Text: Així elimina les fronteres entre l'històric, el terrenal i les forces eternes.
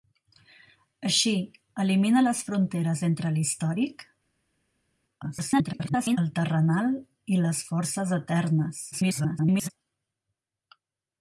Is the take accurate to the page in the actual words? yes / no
no